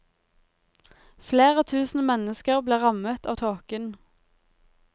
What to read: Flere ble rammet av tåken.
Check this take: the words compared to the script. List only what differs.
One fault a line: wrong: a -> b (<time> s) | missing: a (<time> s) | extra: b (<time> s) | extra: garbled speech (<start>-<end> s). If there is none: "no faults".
extra: tusen mennesker (1.7 s)